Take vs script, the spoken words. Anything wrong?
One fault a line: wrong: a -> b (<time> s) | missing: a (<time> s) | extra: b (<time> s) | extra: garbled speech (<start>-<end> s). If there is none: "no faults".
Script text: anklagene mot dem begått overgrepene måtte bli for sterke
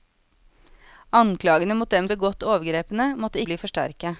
no faults